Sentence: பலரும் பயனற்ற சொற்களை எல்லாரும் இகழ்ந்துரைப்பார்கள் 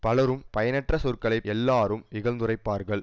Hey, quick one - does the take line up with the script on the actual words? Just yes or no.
yes